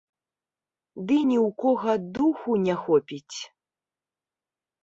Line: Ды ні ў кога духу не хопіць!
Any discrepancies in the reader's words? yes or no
no